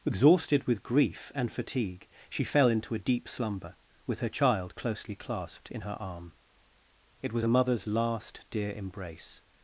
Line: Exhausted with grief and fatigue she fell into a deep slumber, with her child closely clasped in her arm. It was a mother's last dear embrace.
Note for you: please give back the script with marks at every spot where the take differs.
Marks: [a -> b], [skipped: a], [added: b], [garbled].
Exhausted with grief and fatigue she fell into a deep slumber, with her child closely clasped in her arm. It was a mother's last dear embrace.